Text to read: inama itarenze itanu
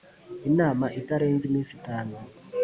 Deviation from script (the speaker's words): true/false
true